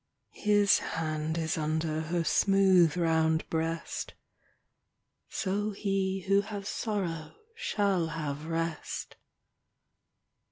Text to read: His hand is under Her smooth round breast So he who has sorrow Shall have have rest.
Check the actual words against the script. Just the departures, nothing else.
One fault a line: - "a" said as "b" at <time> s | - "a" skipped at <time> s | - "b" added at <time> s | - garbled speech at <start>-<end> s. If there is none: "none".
- "have" skipped at 8.5 s